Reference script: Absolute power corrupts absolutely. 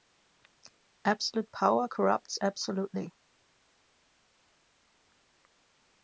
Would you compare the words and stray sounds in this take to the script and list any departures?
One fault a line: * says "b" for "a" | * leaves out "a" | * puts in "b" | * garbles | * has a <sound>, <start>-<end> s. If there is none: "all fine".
all fine